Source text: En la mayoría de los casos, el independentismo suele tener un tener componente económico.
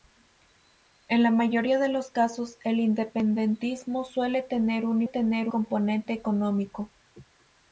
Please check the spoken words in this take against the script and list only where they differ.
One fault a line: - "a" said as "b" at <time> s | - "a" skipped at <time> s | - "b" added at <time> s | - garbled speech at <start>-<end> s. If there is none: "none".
none